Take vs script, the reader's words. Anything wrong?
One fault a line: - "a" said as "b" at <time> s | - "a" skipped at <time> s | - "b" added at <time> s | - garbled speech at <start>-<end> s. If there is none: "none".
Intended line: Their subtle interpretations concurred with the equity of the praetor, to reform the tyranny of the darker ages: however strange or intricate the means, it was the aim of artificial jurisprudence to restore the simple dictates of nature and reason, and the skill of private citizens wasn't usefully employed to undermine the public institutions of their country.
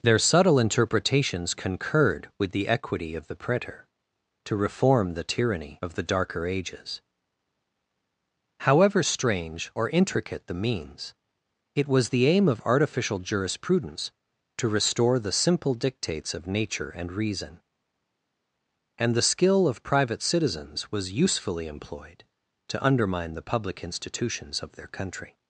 - "wasn't" said as "was" at 20.9 s